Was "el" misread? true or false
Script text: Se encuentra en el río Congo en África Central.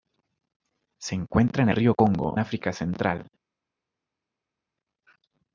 true